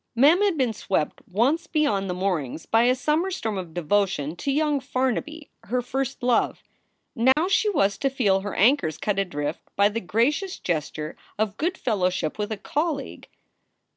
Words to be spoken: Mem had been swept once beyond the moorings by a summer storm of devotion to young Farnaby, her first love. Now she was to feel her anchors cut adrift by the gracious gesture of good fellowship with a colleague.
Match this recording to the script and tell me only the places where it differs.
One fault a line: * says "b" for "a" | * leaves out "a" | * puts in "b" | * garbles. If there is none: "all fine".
all fine